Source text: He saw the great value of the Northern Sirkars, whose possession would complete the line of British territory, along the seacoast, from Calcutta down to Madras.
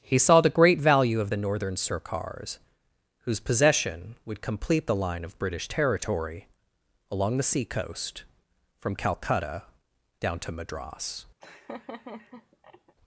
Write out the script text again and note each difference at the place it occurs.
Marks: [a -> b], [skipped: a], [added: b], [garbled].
He saw the great value of the Northern Sirkars, whose possession would complete the line of British territory, along the seacoast, from Calcutta down to Madras.